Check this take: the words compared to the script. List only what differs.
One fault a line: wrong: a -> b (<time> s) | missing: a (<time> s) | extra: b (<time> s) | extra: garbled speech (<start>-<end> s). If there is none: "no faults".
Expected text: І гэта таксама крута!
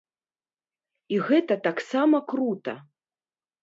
no faults